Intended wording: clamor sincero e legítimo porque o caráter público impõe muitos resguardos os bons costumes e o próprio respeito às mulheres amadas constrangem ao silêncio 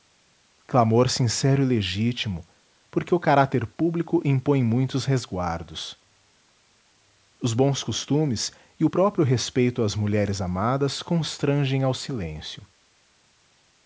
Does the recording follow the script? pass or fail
pass